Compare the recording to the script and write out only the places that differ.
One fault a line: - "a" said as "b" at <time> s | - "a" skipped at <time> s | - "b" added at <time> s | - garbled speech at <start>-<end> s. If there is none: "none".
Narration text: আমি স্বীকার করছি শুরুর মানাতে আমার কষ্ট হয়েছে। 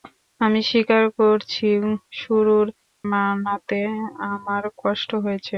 none